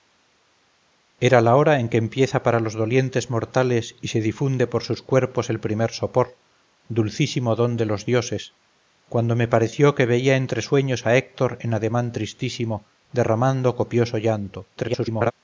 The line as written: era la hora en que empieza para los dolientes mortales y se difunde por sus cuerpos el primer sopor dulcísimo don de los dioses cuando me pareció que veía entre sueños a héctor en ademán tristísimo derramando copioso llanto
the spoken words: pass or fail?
fail